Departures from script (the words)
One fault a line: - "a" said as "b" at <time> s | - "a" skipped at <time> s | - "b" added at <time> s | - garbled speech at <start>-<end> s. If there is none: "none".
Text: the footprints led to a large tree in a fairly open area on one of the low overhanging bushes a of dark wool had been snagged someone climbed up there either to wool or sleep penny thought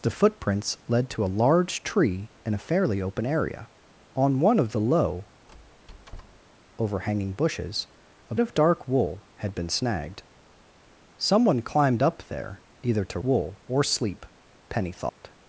none